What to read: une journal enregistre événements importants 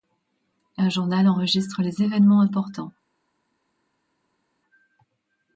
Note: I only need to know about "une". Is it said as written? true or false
false